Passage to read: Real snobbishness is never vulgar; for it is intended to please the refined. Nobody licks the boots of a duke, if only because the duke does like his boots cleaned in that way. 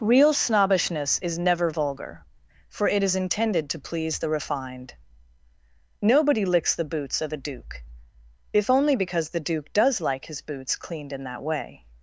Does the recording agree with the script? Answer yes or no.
yes